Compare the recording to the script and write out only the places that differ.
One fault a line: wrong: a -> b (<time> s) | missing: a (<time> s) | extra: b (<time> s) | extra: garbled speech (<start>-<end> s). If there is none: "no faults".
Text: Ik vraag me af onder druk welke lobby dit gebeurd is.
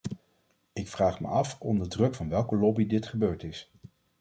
extra: van (2.1 s)